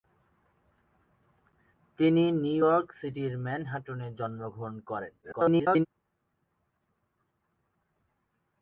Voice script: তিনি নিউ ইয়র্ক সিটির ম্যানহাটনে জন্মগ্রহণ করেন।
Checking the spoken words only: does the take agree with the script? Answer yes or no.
no